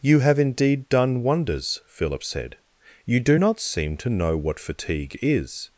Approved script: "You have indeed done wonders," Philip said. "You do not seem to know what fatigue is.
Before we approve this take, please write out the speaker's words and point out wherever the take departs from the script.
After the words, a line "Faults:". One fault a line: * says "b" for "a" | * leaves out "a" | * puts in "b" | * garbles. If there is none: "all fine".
"You have indeed done wonders," Philip said. "You do not seem to know what fatigue is.
Faults:
all fine